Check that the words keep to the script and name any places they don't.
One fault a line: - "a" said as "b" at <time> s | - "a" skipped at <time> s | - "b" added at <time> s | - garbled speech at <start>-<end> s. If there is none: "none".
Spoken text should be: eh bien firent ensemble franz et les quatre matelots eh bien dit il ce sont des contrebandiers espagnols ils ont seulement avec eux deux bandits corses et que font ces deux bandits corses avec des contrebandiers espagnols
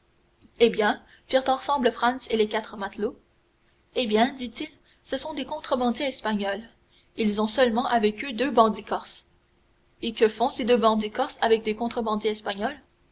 none